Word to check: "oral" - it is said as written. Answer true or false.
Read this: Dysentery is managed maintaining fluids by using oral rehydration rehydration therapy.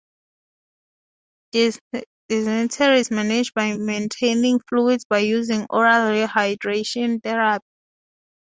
true